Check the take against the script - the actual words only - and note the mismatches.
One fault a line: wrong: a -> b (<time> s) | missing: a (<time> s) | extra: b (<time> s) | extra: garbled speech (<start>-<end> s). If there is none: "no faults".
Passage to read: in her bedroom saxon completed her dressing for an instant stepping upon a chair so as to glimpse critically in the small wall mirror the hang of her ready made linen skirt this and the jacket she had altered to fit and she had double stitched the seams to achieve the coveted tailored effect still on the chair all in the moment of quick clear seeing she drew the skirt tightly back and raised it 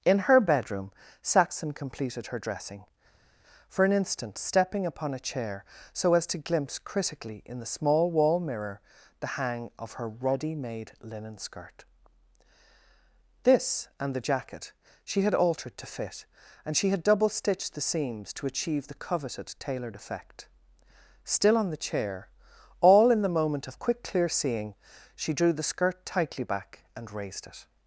no faults